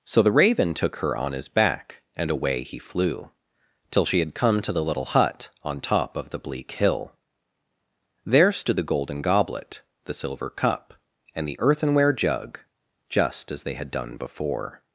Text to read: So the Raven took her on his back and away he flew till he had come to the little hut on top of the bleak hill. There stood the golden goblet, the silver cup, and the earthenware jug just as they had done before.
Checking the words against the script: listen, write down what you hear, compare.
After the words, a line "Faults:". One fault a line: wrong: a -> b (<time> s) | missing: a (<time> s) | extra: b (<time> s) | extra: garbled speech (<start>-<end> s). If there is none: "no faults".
So the Raven took her on his back and away he flew till she had come to the little hut on top of the bleak hill. There stood the golden goblet, the silver cup, and the earthenware jug just as they had done before.
Faults:
wrong: he -> she (4.0 s)